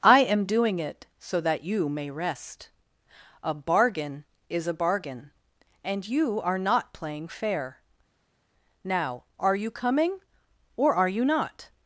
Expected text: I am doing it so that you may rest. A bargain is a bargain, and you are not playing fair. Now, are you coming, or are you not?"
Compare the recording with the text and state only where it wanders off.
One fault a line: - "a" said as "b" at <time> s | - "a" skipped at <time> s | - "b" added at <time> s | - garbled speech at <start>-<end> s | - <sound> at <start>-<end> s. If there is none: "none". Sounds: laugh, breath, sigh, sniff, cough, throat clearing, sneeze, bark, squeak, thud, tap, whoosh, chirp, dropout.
none